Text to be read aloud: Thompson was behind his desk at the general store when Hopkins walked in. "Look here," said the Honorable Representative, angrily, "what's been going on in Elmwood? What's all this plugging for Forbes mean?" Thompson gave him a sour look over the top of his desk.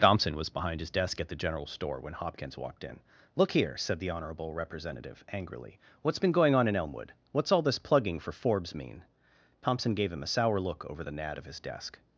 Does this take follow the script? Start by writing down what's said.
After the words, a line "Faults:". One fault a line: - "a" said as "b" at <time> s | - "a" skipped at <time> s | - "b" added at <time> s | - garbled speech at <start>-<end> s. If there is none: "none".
Thompson was behind his desk at the general store when Hopkins walked in. "Look here," said the Honorable Representative, angrily, "what's been going on in Elmwood? What's all this plugging for Forbes mean?" Thompson gave him a sour look over the nad of his desk.
Faults:
- "top" said as "nad" at 11.1 s